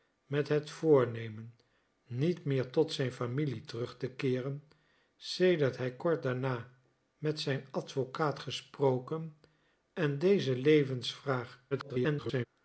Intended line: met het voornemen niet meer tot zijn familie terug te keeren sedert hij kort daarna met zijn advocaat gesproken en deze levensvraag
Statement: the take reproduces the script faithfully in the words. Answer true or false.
false